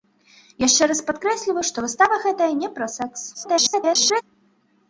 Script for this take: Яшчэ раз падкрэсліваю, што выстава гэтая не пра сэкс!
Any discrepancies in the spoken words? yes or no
yes